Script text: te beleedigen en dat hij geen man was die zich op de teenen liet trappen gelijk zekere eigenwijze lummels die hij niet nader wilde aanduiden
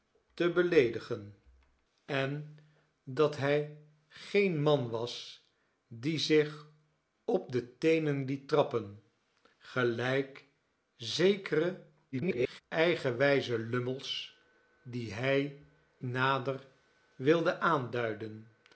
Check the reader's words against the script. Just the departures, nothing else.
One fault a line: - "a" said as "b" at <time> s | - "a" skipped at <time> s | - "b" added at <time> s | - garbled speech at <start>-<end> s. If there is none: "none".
- garbled speech at 12.1-12.6 s
- "niet" skipped at 15.6 s